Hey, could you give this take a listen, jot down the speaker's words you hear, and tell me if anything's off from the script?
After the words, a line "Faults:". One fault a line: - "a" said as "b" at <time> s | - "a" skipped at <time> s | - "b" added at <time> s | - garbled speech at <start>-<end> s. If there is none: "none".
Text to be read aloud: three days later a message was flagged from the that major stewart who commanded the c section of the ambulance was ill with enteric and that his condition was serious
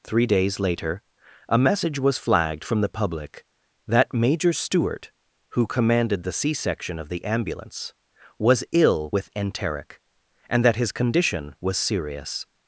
three days later a message was flagged from the public that major stewart who commanded the c section of the ambulance was ill with enteric and that his condition was serious
Faults:
- "public" added at 2.9 s